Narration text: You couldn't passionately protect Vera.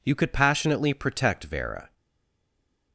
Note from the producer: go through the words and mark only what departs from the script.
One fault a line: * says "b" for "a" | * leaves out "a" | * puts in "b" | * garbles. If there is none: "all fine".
* says "could" for "couldn't"